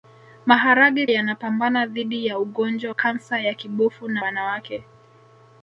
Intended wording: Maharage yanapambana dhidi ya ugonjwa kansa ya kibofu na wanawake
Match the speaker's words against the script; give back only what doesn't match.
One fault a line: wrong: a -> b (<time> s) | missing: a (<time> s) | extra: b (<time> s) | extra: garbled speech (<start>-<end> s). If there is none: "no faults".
no faults